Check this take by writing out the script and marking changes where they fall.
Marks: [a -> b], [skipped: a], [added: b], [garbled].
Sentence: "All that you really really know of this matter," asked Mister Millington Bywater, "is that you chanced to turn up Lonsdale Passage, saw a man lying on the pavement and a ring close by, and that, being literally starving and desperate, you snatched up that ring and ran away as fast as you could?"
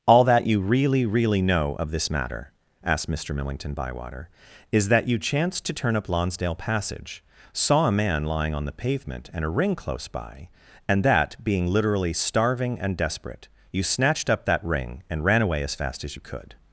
"All that you really really know of this matter," asked Mister Millington Bywater, "is that you chanced to turn up Lonsdale Passage, saw a man lying on the pavement and a ring close by, and that, being literally starving and desperate, you snatched up that ring and ran away as fast as you could?"